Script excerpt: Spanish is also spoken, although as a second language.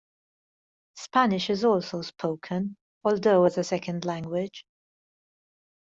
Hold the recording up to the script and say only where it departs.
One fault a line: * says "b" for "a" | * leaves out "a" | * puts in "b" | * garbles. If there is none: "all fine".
all fine